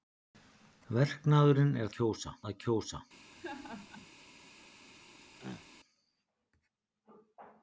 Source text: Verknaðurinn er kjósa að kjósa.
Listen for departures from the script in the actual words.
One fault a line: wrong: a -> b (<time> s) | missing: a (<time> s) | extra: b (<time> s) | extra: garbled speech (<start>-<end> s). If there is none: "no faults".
no faults